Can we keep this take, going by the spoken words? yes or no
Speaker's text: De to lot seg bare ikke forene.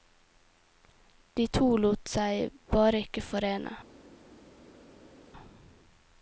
yes